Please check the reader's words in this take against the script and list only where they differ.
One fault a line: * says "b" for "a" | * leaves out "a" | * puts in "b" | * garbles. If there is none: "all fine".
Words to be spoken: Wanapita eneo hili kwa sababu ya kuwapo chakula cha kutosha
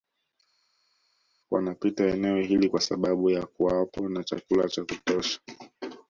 * puts in "na"